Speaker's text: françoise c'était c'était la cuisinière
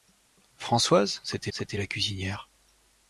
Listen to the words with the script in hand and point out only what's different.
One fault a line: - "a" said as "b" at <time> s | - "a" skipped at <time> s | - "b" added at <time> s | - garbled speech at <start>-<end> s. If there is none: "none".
none